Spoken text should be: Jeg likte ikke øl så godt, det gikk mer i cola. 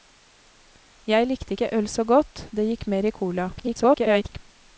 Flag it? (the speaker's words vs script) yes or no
yes